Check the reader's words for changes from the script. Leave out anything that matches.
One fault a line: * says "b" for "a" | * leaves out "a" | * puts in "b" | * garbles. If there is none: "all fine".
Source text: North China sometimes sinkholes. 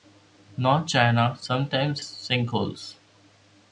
all fine